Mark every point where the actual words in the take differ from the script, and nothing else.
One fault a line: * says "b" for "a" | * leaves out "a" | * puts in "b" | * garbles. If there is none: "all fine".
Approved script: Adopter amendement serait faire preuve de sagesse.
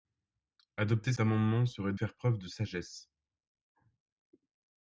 all fine